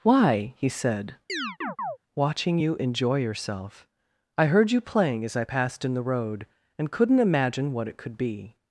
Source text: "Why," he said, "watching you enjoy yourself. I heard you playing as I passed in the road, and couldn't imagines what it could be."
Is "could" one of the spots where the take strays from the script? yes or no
no